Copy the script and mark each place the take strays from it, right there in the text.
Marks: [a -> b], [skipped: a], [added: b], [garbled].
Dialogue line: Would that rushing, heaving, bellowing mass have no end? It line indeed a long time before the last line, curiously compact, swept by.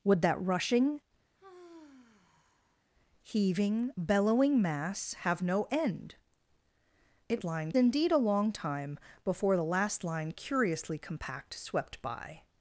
Would that rushing, heaving, bellowing mass have no end? It line indeed a long time before the last line, curiously compact, swept by.